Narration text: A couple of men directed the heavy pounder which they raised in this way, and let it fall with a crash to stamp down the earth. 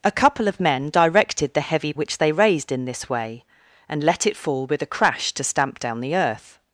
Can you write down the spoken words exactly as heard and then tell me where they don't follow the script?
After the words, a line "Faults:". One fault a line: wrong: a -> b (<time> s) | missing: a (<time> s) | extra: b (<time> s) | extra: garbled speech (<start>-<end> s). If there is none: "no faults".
A couple of men directed the heavy which they raised in this way, and let it fall with a crash to stamp down the earth.
Faults:
missing: pounder (1.9 s)